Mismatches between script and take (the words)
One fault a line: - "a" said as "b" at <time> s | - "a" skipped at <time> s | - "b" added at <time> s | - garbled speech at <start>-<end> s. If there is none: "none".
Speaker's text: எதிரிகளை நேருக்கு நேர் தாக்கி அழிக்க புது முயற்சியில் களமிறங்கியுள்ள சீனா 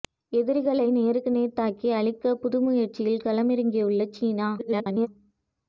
- garbled speech at 4.6-5.1 s